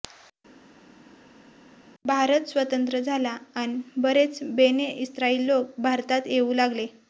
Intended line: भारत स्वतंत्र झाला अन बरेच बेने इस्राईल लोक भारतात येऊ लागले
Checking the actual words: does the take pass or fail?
pass